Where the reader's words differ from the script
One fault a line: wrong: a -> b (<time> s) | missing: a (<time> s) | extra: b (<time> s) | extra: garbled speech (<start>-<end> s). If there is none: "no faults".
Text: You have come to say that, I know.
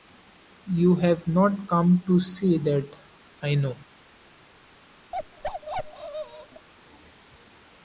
extra: not (1.3 s)